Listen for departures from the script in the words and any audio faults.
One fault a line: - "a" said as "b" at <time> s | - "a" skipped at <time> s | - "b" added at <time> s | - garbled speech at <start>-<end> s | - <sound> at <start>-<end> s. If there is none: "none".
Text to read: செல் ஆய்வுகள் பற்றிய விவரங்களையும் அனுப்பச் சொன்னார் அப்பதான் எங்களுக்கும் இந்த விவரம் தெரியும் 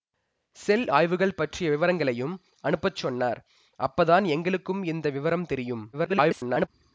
- garbled speech at 5.9-6.7 s